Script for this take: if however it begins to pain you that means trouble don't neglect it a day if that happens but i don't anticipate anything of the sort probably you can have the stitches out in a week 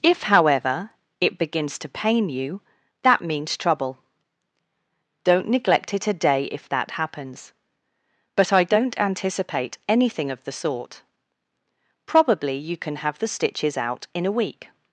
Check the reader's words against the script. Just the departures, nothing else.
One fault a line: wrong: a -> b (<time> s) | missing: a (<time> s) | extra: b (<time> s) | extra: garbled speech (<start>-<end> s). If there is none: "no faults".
no faults